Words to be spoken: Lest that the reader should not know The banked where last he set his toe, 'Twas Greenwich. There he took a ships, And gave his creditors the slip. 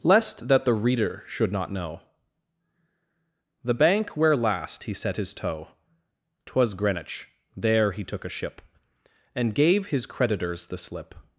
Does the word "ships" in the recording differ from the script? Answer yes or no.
yes